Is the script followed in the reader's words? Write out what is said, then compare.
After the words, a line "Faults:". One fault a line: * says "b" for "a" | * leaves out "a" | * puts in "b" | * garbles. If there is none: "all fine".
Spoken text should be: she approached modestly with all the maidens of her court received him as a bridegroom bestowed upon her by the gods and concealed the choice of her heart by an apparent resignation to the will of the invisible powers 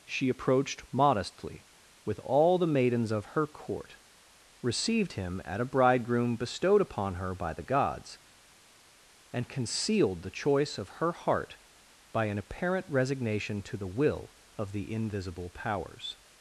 she approached modestly with all the maidens of her court received him at a bridegroom bestowed upon her by the gods and concealed the choice of her heart by an apparent resignation to the will of the invisible powers
Faults:
* says "at" for "as"